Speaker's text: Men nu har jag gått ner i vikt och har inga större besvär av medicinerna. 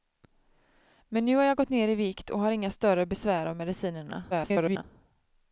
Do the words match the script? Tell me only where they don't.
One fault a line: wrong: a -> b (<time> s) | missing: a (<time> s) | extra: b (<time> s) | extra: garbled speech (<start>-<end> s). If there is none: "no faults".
extra: garbled speech (4.3-4.8 s)